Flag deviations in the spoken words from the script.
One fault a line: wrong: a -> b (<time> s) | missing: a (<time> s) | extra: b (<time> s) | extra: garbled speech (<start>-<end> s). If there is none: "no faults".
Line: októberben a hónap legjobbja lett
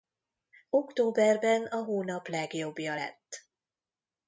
no faults